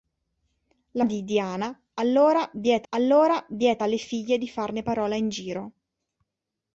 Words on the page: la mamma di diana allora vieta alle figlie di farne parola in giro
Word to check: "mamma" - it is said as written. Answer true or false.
false